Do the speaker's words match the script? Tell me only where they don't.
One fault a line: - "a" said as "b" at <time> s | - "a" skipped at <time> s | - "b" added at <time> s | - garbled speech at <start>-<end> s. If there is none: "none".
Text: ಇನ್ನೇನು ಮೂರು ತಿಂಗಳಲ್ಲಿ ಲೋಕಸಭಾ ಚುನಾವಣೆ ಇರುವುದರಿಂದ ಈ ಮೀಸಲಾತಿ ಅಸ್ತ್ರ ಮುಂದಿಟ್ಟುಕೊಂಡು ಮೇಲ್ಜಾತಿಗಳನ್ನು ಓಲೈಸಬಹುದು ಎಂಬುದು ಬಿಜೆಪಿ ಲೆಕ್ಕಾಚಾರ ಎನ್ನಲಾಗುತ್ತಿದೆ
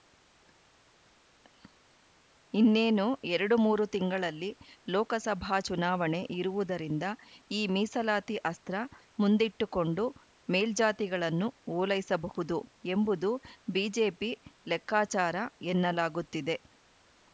- "ಎರಡು" added at 3.3 s